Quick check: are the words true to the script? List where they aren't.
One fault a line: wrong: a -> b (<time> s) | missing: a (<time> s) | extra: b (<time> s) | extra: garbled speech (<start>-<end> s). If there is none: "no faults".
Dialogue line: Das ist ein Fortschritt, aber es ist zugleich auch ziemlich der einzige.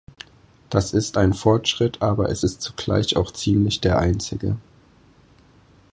no faults